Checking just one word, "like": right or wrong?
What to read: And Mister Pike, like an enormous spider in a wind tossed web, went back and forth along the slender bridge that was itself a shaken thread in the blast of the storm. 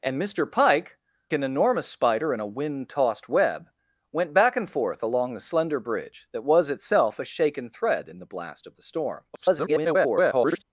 wrong